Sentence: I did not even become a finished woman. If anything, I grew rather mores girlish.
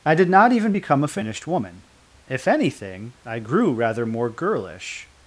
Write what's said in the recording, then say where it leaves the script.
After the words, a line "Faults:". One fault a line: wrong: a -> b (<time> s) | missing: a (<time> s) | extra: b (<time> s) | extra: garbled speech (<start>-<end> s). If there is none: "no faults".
I did not even become a finished woman. If anything, I grew rather more girlish.
Faults:
wrong: mores -> more (4.1 s)